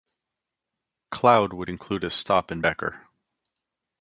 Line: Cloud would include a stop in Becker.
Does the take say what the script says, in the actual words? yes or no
yes